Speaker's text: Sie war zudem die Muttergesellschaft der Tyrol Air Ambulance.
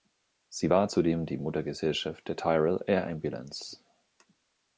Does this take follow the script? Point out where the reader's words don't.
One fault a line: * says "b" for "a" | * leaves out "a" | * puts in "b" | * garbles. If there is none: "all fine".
all fine